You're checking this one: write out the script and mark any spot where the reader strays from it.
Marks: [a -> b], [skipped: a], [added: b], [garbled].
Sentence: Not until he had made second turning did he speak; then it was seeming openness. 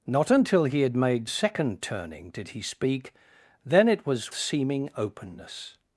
Not until he had made second turning did he speak; then it was seeming openness.